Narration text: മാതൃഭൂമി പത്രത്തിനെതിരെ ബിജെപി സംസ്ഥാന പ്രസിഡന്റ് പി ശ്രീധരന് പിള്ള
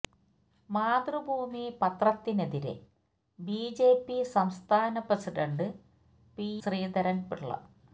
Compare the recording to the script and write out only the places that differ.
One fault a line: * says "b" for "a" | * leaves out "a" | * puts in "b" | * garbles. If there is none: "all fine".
all fine